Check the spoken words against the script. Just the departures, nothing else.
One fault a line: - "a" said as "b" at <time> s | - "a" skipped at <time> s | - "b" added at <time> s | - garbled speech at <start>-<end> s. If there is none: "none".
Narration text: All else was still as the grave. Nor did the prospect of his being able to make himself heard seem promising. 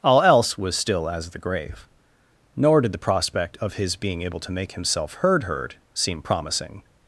- "heard" added at 5.4 s